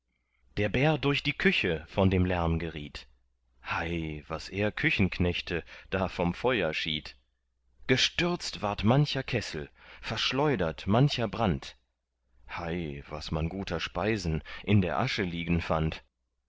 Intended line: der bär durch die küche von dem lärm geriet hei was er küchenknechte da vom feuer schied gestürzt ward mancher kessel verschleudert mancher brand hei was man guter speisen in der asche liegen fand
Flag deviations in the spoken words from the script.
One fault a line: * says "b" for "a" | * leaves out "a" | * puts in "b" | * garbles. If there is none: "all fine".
all fine